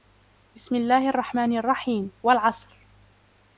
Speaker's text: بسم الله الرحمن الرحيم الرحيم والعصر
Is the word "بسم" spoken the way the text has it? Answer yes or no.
yes